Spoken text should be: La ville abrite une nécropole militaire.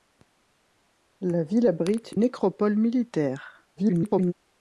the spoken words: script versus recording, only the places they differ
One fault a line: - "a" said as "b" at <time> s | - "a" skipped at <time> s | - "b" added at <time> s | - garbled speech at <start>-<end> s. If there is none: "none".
- "une" skipped at 2.2 s
- garbled speech at 3.8-4.3 s